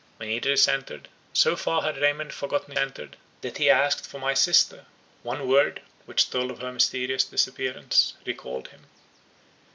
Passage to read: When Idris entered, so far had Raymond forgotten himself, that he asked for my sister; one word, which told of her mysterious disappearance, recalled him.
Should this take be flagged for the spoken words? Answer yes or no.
yes